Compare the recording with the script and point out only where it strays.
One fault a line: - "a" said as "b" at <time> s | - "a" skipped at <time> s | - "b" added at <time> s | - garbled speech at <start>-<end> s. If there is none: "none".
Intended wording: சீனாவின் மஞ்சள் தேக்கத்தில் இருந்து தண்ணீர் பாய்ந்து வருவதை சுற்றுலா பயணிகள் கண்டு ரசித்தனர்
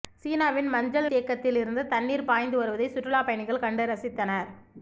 none